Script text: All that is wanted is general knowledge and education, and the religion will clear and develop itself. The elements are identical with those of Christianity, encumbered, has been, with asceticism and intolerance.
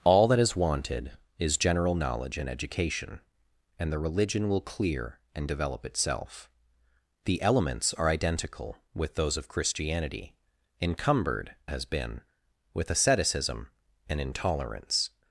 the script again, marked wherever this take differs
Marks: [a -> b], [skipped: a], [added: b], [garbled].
All that is wanted is general knowledge and education, and the religion will clear and develop itself. The elements are identical with those of Christianity, encumbered, has been, with asceticism and intolerance.